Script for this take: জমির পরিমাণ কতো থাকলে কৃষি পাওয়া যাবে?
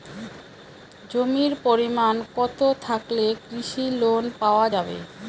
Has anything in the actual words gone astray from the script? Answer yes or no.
yes